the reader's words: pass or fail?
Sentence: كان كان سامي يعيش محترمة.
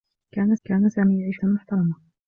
pass